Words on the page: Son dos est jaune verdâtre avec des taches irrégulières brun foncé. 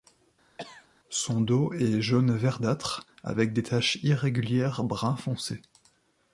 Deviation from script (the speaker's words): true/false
false